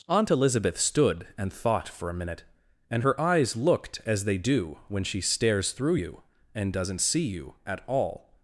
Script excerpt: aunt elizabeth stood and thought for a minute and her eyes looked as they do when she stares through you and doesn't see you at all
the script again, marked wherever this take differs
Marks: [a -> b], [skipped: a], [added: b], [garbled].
aunt elizabeth stood and thought for a minute and her eyes looked as they do when she stares through you and doesn't see you at all